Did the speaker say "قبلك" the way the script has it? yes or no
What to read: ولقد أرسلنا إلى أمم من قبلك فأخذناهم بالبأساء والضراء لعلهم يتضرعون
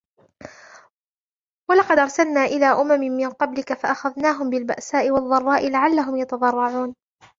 yes